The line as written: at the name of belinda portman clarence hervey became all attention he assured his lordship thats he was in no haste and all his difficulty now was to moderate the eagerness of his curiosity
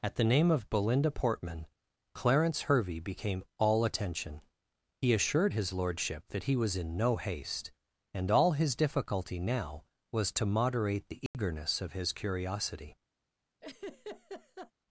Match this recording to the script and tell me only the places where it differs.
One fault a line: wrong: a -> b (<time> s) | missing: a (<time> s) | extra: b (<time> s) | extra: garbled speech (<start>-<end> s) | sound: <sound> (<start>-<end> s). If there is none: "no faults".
wrong: thats -> that (6.3 s)
sound: dropout (11.3-11.3 s)
sound: laugh (13.6-14.7 s)